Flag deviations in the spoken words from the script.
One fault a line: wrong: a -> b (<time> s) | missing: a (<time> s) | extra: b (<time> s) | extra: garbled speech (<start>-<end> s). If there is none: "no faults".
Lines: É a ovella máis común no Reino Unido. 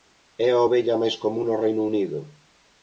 no faults